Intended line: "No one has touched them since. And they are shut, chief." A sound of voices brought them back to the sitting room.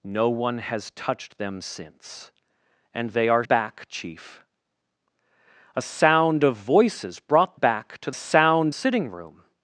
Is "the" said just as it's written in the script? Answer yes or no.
no